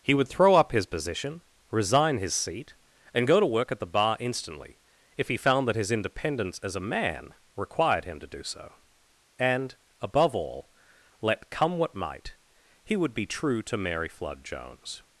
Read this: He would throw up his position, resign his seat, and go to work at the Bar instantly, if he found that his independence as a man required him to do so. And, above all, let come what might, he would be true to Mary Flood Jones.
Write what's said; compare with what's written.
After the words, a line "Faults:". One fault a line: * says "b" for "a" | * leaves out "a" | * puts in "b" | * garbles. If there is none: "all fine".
He would throw up his position, resign his seat, and go to work at the Bar instantly, if he found that his independence as a man required him to do so. And, above all, let come what might, he would be true to Mary Flood Jones.
Faults:
all fine